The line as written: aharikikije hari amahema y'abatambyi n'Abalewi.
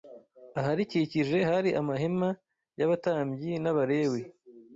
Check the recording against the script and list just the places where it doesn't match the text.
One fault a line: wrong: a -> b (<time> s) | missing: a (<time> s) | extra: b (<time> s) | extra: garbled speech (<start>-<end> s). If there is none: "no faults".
no faults